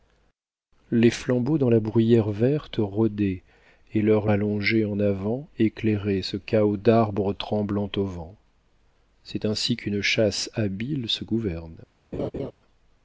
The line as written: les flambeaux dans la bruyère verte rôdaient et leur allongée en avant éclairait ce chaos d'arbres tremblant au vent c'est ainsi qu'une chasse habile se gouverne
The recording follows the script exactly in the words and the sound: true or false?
false